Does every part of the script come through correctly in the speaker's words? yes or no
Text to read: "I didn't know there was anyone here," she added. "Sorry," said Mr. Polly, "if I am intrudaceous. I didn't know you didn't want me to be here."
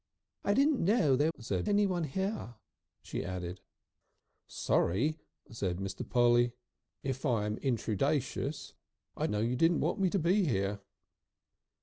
no